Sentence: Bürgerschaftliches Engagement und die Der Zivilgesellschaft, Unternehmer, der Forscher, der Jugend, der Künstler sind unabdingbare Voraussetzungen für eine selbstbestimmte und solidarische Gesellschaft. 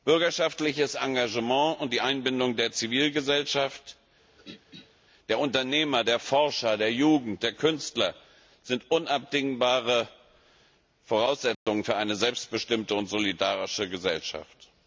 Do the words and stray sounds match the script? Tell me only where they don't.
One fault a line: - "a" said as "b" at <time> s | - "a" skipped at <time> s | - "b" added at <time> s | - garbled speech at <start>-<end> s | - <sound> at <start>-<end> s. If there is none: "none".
- "Einbindung" added at 2.0 s
- throat clearing at 4.2-4.9 s
- "der" added at 5.3 s
- dropout at 11.5-11.7 s